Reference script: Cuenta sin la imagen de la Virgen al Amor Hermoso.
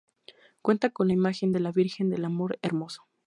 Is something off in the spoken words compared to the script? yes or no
yes